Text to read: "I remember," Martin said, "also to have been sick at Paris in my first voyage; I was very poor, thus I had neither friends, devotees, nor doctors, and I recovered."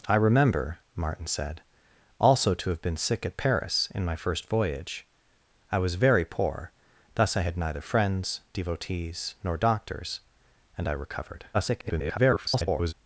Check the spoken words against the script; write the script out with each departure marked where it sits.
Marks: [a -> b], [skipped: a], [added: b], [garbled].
"I remember," Martin said, "also to have been sick at Paris in my first voyage; I was very poor, thus I had neither friends, devotees, nor doctors, and I recovered." [garbled]